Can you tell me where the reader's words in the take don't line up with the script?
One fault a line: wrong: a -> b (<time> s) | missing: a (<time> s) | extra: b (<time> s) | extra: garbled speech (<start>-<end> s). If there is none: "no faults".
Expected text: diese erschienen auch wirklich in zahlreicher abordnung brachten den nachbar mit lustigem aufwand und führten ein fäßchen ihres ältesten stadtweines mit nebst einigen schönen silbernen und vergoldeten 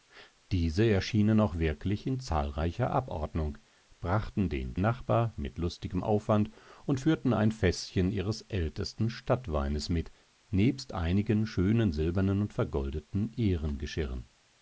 no faults